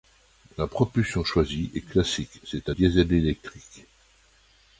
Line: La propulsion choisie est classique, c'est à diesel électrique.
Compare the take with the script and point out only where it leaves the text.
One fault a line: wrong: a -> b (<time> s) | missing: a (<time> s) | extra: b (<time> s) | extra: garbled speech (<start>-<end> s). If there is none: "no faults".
no faults